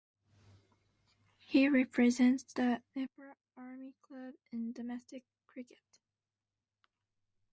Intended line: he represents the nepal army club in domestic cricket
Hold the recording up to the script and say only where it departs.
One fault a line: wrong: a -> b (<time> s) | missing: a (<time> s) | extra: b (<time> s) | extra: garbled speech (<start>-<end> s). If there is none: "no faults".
no faults